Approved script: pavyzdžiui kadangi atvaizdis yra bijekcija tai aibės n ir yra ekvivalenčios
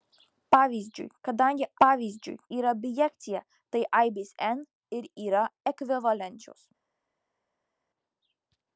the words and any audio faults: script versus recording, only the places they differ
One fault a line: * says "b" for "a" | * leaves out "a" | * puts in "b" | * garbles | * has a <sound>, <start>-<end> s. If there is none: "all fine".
* says "pavyzdžiui" for "atvaizdis"